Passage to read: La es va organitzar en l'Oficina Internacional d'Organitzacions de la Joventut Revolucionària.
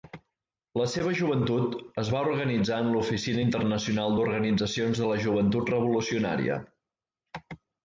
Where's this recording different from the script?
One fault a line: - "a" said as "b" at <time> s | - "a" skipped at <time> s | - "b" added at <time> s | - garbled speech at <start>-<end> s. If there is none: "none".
- "seva joventut" added at 0.9 s